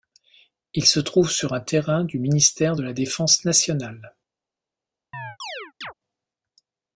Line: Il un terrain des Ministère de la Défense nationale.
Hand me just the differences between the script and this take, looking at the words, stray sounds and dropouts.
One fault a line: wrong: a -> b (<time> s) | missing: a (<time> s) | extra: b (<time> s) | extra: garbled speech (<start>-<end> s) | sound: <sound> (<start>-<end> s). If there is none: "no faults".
extra: se trouve sur (0.9 s)
wrong: des -> du (2.0 s)
sound: chirp (5.1-5.9 s)